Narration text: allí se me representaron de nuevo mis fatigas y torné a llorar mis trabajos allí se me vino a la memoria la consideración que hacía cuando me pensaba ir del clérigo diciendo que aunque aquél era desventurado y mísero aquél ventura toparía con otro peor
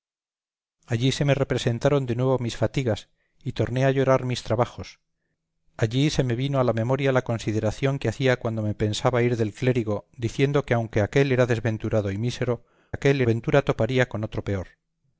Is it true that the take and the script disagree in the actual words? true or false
false